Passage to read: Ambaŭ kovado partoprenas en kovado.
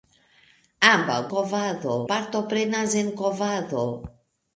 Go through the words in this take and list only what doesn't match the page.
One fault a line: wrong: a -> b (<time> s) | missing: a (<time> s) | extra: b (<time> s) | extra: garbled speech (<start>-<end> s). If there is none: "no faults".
no faults